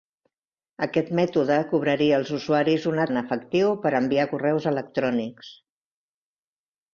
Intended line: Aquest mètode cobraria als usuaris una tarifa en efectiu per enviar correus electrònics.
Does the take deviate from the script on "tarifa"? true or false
true